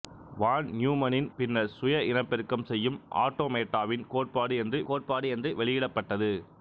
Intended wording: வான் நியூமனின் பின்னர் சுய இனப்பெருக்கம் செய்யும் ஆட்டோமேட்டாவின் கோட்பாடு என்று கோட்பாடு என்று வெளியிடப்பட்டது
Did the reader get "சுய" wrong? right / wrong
right